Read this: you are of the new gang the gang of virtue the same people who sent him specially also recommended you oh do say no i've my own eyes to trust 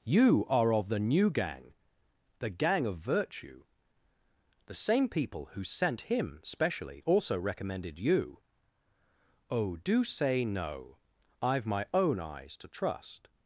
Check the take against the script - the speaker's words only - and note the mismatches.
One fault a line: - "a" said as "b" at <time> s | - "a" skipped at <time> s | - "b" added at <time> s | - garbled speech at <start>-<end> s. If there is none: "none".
none